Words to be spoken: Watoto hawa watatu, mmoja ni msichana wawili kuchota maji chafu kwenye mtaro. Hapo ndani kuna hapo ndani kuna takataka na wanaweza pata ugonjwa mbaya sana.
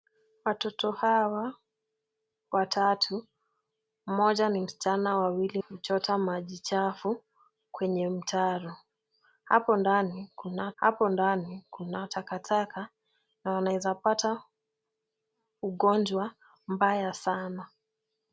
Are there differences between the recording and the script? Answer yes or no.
no